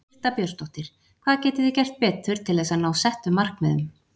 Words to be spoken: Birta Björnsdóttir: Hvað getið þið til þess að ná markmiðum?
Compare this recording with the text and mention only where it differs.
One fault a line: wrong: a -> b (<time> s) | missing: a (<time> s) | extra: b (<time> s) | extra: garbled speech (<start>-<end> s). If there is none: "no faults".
extra: gert betur (1.8 s)
extra: settum (3.1 s)